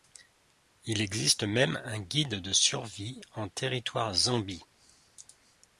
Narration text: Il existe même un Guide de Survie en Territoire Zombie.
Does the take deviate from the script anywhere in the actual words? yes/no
no